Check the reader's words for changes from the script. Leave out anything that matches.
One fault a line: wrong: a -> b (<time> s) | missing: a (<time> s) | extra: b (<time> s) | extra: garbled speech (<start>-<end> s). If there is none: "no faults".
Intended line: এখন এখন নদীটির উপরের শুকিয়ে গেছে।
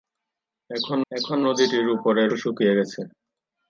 no faults